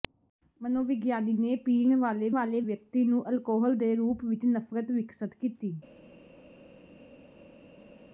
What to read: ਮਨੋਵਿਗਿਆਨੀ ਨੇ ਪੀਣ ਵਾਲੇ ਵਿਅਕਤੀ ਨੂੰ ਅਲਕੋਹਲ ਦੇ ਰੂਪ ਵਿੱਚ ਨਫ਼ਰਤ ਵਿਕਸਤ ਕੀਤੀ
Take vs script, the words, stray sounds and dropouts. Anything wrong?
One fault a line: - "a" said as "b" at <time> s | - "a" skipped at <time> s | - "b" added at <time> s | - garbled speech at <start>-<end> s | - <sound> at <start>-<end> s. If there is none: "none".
- "ਵਾਲੇ" added at 2.3 s